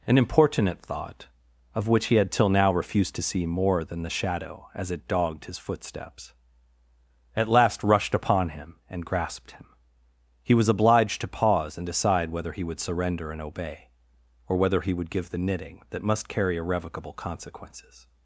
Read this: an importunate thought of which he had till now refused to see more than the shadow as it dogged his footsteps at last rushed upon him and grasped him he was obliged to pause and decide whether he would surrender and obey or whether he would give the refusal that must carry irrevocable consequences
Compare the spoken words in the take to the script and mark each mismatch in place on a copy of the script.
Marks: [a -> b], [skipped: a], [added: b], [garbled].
an importunate thought of which he had till now refused to see more than the shadow as it dogged his footsteps at last rushed upon him and grasped him he was obliged to pause and decide whether he would surrender and obey or whether he would give the [refusal -> knitting] that must carry irrevocable consequences